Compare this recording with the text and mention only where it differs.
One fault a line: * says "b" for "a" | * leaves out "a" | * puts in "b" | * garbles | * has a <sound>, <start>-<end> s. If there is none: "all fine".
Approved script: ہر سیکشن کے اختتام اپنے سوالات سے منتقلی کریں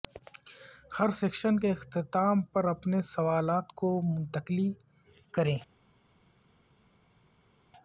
* puts in "پر"
* says "کو" for "سے"